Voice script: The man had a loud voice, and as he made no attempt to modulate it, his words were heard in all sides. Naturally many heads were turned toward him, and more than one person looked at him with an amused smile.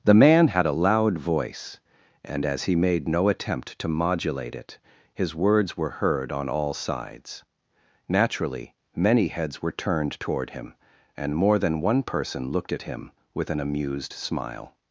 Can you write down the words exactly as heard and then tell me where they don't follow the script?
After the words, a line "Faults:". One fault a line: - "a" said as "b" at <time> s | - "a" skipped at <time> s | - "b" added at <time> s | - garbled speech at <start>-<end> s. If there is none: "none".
The man had a loud voice, and as he made no attempt to modulate it, his words were heard on all sides. Naturally many heads were turned toward him, and more than one person looked at him with an amused smile.
Faults:
- "in" said as "on" at 6.3 s